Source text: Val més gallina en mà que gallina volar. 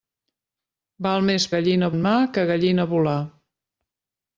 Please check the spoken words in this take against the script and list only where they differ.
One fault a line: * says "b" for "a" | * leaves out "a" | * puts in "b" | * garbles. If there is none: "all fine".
all fine